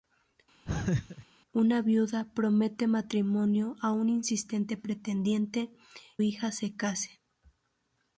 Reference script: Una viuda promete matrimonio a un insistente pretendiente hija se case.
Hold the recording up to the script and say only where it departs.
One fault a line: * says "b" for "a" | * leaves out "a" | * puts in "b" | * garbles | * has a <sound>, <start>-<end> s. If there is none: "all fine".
* has a laugh, 0.7-1.3 s